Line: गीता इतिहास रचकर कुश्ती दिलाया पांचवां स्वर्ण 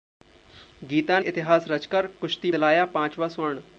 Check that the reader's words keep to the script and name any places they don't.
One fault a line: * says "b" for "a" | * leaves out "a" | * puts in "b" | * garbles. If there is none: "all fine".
all fine